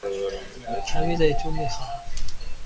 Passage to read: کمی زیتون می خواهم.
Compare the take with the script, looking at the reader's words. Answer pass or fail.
pass